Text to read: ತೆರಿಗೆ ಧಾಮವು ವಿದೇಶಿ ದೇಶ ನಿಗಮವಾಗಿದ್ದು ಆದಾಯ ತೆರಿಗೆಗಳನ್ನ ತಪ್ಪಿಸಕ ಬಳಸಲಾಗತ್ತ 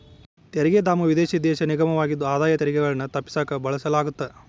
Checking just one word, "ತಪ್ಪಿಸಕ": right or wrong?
right